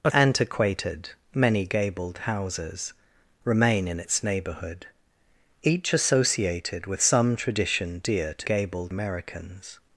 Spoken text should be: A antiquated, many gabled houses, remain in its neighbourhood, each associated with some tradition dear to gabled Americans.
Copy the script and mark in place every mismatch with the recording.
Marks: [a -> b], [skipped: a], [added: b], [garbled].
A antiquated, many gabled houses, remain in its neighbourhood, each associated with some tradition dear to gabled Americans.